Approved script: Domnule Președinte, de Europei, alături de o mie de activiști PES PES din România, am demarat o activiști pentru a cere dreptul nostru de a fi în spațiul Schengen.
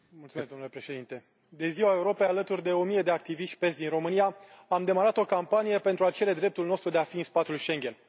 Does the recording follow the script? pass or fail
fail